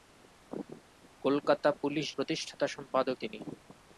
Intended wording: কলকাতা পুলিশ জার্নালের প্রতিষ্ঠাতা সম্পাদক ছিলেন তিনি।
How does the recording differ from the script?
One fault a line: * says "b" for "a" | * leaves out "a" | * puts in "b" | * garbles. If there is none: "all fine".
* leaves out "জার্নালের"
* leaves out "ছিলেন"